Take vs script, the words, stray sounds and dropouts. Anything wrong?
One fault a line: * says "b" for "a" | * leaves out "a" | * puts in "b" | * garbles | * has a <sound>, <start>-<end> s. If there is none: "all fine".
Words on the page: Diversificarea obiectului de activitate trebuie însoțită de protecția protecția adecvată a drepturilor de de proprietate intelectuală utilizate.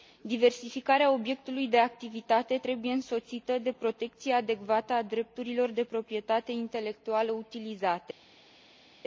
* leaves out "protecția"
* leaves out "de"